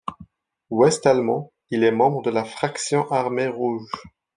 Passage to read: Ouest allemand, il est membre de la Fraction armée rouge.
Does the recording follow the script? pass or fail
pass